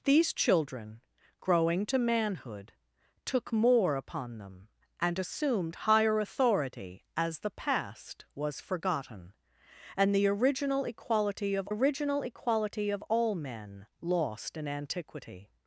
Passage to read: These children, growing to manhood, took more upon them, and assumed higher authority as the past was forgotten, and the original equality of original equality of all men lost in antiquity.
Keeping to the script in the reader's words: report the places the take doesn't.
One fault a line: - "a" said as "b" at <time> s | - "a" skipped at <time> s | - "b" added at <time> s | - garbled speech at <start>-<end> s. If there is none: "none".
none